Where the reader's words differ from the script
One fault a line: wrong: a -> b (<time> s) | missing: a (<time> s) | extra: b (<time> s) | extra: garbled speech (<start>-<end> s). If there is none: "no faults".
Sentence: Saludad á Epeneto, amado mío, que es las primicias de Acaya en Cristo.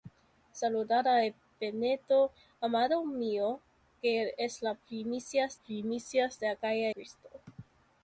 extra: primicias (5.6 s)
missing: en (6.9 s)